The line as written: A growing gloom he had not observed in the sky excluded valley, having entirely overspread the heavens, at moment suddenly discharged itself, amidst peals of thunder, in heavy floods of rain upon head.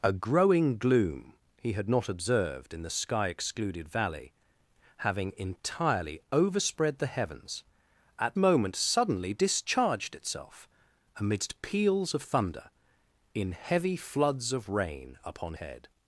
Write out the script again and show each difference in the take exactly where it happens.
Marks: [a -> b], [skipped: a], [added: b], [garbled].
A growing gloom he had not observed in the sky excluded valley, having entirely overspread the heavens, at moment suddenly discharged itself, amidst peals of thunder, in heavy floods of rain upon head.